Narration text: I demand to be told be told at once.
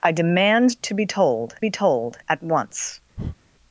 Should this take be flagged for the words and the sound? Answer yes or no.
yes